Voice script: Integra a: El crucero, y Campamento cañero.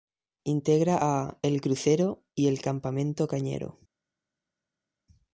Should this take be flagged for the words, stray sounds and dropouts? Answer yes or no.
yes